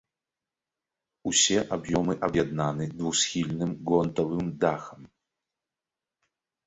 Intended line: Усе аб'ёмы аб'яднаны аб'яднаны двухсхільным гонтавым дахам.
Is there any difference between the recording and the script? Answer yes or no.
yes